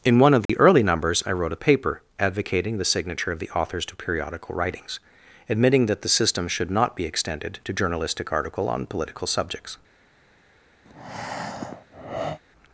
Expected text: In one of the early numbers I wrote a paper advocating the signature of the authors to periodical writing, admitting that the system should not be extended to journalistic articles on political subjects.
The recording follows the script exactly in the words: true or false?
false